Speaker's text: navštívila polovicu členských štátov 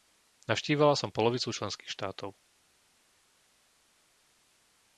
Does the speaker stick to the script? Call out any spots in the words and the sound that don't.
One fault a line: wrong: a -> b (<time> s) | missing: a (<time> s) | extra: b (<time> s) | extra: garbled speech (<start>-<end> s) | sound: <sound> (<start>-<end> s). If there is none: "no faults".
extra: som (1.0 s)